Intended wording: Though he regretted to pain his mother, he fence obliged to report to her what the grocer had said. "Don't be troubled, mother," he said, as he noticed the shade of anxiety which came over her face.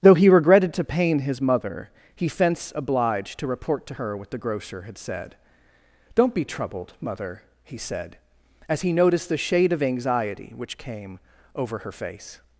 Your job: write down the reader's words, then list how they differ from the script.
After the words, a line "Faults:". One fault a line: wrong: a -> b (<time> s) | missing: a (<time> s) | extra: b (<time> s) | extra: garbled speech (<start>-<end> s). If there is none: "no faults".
Though he regretted to pain his mother, he fence obliged to report to her what the grocer had said. "Don't be troubled, mother," he said, as he noticed the shade of anxiety which came over her face.
Faults:
no faults